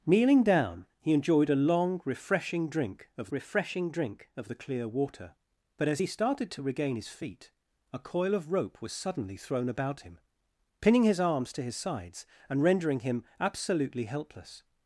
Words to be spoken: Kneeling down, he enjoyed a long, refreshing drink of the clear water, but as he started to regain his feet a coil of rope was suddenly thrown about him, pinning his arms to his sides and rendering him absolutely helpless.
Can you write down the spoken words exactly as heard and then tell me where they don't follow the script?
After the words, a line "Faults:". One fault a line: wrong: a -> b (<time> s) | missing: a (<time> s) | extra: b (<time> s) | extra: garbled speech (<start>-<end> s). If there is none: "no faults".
Kneeling down, he enjoyed a long, refreshing drink of refreshing drink of the clear water, but as he started to regain his feet a coil of rope was suddenly thrown about him, pinning his arms to his sides and rendering him absolutely helpless.
Faults:
extra: refreshing drink of (3.3 s)